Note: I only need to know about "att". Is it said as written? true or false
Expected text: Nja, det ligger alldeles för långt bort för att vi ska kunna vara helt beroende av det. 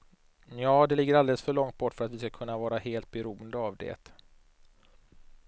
true